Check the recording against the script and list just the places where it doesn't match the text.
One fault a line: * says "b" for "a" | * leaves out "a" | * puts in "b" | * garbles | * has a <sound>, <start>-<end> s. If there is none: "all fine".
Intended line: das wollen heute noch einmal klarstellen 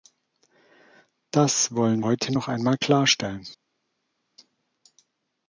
all fine